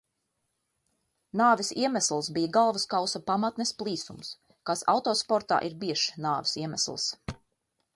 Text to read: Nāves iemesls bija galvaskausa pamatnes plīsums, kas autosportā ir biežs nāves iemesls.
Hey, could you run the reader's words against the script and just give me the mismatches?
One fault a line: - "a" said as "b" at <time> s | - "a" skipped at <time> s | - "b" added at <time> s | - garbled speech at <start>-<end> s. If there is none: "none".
none